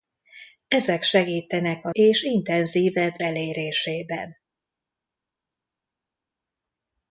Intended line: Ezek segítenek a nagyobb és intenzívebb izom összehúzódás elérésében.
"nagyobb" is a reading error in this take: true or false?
true